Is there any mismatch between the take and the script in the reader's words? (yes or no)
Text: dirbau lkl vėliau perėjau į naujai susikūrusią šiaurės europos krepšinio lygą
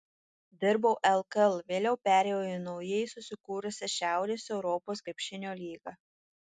no